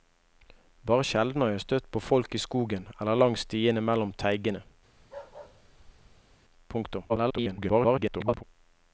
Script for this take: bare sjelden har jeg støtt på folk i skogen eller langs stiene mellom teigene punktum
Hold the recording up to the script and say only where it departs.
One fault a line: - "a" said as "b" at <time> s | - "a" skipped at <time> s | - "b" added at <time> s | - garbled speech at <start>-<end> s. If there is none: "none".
- garbled speech at 7.1-8.4 s